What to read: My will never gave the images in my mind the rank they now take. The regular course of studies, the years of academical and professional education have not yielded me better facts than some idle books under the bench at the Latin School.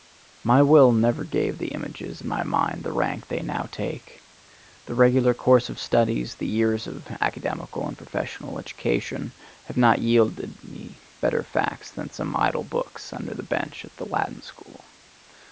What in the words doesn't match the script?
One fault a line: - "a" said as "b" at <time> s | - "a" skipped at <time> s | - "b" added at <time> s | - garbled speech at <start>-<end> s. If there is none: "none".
none